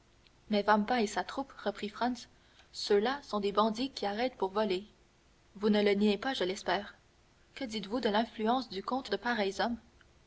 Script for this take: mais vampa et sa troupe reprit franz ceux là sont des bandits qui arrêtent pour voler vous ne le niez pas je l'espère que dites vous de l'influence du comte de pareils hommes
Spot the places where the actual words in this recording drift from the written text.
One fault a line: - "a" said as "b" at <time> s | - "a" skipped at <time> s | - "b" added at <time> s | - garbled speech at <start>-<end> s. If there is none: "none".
none